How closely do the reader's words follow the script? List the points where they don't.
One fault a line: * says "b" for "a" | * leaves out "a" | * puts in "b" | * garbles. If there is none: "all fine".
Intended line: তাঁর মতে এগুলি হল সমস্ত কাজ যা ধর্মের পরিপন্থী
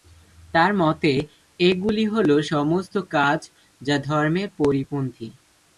all fine